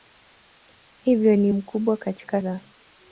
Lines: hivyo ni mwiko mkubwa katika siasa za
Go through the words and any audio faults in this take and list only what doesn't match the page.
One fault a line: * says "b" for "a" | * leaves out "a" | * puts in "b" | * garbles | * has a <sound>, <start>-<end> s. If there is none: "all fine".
* leaves out "mwiko"
* leaves out "siasa"